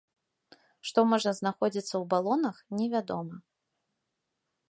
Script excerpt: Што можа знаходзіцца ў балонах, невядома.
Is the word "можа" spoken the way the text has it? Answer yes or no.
yes